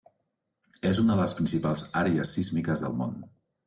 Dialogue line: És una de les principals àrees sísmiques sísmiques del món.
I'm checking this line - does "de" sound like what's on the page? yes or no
yes